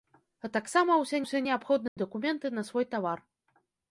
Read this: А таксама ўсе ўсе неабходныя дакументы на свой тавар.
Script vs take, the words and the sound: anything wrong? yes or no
yes